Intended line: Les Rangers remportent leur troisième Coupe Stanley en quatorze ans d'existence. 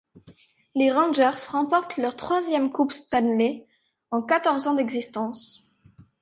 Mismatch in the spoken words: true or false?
false